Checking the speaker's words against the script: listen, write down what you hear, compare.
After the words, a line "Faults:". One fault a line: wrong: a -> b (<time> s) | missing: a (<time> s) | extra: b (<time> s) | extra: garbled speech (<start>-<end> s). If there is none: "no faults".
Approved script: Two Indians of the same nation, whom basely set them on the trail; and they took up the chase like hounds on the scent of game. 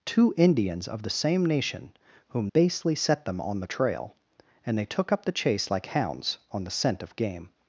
Two Indians of the same nation, whom basely set them on the trail; and they took up the chase like hounds on the scent of game.
Faults:
no faults